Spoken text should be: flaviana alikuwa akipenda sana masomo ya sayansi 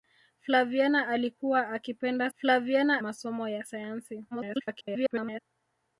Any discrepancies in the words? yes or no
yes